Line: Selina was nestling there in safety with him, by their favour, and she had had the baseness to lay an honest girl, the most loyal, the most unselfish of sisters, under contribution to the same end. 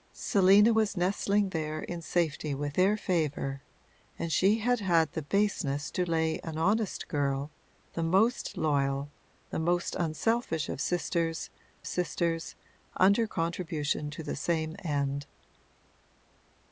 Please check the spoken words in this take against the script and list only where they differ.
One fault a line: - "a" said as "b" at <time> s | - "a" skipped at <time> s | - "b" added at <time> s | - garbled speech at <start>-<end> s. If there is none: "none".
- "him by" skipped at 2.8 s
- "sisters" added at 11.9 s